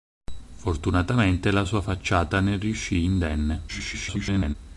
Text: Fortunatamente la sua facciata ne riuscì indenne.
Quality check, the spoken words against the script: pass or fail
fail